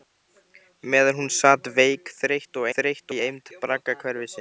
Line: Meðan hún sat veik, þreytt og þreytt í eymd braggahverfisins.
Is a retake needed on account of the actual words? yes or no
no